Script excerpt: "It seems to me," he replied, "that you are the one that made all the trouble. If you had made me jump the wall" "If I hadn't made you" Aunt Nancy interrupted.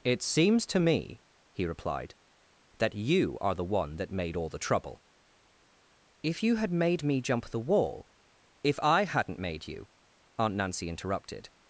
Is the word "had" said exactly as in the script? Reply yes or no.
yes